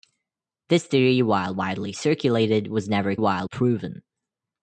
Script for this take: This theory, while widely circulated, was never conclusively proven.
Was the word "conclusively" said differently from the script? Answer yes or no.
yes